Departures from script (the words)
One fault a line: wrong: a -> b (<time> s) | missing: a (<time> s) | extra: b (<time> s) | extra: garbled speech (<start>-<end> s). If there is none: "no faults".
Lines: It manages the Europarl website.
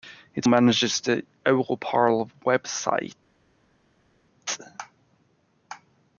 no faults